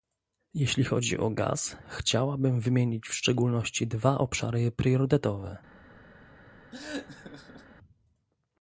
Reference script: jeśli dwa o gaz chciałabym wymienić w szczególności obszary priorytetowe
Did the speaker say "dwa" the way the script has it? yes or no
no